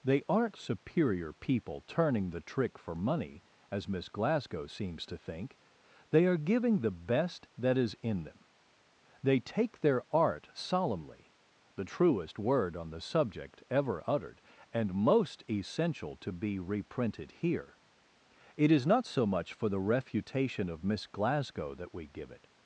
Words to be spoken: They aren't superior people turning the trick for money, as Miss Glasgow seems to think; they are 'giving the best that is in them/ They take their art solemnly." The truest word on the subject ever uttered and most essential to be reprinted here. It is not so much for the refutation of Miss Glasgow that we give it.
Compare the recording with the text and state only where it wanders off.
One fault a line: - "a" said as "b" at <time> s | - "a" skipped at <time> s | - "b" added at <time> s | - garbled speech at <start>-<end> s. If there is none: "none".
none